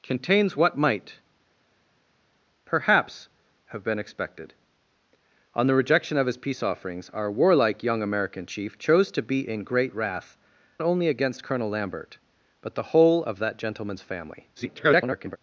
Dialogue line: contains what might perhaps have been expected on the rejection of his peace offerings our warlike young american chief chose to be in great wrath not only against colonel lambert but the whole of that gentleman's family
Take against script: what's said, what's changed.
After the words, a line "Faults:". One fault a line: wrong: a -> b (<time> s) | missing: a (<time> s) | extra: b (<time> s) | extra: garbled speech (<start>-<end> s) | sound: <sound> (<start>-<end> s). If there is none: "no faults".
contains what might perhaps have been expected on the rejection of his peace offerings our warlike young american chief chose to be in great wrath only against colonel lambert but the whole of that gentleman's family [garbled]
Faults:
missing: not (10.4 s)
extra: garbled speech (14.6-15.4 s)